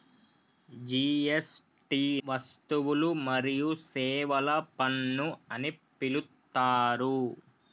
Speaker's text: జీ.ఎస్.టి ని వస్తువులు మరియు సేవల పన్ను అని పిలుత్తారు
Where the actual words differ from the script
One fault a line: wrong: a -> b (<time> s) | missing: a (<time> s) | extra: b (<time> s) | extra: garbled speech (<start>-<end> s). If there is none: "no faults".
missing: ని (2.0 s)